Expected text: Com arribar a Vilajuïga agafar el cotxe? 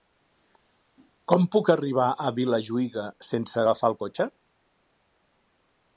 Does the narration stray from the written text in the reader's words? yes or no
yes